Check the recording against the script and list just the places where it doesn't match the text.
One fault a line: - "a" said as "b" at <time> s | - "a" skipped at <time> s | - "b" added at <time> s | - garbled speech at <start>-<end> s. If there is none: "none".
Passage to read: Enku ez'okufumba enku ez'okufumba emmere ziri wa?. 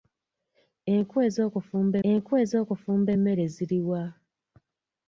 none